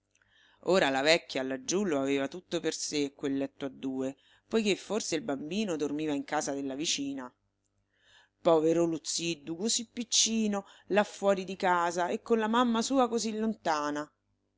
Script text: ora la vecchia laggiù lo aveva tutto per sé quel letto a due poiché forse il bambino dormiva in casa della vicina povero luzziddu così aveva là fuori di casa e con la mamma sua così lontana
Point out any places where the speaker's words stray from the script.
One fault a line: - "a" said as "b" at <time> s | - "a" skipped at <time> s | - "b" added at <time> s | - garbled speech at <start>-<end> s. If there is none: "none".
- "aveva" said as "piccino" at 9.9 s